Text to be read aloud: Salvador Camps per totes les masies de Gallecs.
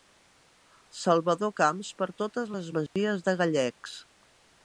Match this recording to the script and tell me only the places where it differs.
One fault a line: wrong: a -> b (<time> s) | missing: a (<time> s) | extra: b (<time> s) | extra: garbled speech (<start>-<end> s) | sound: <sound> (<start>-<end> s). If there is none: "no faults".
sound: dropout (2.9-3.0 s)